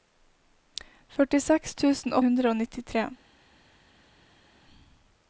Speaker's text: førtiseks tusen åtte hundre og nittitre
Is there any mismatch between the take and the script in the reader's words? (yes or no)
yes